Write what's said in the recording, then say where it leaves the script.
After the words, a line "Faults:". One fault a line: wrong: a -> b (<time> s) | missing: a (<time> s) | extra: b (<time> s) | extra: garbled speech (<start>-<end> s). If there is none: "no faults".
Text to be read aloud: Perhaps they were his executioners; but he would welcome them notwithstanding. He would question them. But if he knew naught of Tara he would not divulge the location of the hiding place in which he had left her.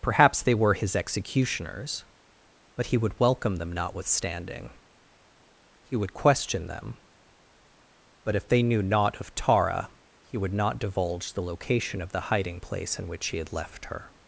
Perhaps they were his executioners; but he would welcome them notwithstanding. He would question them. But if they knew naught of Tara he would not divulge the location of the hiding place in which he had left her.
Faults:
wrong: he -> they (8.5 s)